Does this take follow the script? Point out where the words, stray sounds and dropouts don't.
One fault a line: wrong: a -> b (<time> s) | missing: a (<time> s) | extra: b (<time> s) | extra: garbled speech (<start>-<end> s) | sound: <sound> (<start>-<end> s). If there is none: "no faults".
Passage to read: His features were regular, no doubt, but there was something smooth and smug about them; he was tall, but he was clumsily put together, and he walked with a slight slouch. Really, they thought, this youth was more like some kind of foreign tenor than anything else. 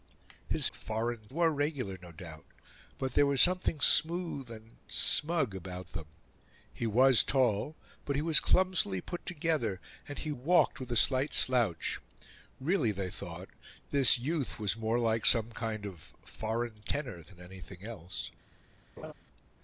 wrong: features -> foreign (0.7 s)
sound: laugh (19.0-19.1 s)